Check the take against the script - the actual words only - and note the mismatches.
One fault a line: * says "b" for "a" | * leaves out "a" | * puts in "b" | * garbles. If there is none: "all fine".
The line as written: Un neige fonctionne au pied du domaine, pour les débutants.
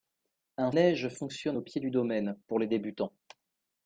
all fine